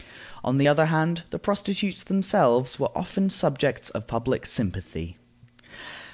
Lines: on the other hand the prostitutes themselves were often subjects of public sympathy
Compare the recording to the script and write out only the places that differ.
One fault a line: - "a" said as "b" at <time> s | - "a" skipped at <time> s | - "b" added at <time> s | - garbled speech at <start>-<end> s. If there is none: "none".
none